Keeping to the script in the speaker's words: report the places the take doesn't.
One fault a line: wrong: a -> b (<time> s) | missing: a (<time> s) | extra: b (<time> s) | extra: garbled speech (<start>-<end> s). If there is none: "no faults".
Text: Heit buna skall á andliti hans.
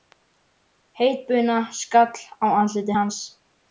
no faults